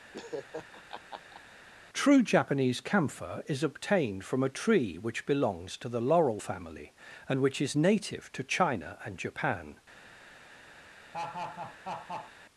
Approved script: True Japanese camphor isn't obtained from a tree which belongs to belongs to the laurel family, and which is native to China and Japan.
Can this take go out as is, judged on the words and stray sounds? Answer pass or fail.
fail